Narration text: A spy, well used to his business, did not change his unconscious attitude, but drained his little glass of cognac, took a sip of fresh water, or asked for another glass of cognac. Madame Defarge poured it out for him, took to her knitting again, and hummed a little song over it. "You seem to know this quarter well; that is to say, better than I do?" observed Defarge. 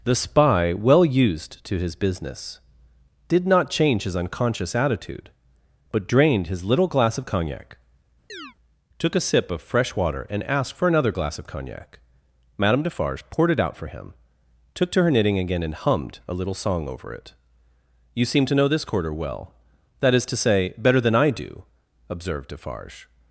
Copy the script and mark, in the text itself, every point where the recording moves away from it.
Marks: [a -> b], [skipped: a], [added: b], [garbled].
[A -> The] spy, well used to his business, did not change his unconscious attitude, but drained his little glass of cognac, took a sip of fresh water, [or -> and] asked for another glass of cognac. Madame Defarge poured it out for him, took to her knitting again, and hummed a little song over it. "You seem to know this quarter well; that is to say, better than I do?" observed Defarge.